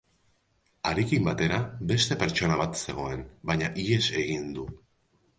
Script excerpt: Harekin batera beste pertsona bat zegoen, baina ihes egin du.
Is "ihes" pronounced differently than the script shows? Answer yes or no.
no